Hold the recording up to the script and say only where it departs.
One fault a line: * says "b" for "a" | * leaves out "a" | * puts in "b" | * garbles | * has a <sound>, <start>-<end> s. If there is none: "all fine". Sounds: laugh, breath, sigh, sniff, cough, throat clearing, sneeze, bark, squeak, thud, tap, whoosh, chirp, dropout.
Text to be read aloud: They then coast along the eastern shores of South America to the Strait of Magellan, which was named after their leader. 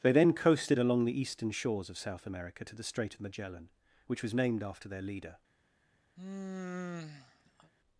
* says "coasted" for "coast"
* has a sigh, 6.2-7.7 s